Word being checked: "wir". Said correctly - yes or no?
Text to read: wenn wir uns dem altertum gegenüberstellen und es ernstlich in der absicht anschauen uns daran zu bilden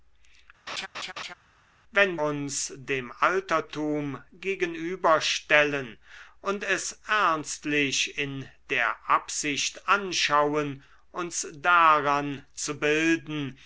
no